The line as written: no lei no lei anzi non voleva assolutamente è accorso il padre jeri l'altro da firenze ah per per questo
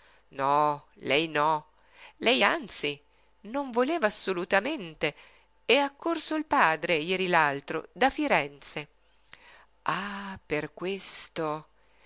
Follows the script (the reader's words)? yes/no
no